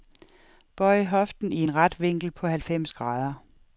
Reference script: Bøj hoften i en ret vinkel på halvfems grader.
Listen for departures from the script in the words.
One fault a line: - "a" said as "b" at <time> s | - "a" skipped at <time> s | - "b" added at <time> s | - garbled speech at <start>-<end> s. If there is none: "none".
none